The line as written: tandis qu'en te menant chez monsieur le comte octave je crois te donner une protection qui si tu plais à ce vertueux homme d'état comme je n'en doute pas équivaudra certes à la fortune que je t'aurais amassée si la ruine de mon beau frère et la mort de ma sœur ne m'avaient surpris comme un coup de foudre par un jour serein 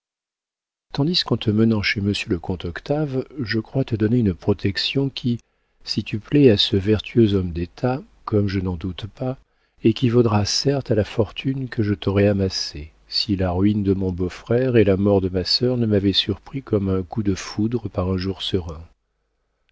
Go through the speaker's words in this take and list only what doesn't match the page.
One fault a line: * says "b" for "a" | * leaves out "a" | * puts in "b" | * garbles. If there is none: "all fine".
all fine